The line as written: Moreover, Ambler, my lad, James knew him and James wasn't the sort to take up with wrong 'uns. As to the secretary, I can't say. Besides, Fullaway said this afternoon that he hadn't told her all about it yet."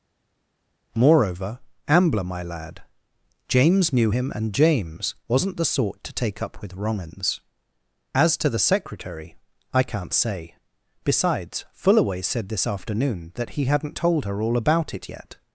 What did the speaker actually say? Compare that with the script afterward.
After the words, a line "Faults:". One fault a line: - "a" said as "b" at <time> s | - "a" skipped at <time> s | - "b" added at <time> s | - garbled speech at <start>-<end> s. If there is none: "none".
Moreover, Ambler, my lad, James knew him and James wasn't the sort to take up with wrong 'uns. As to the secretary, I can't say. Besides, Fullaway said this afternoon that he hadn't told her all about it yet."
Faults:
none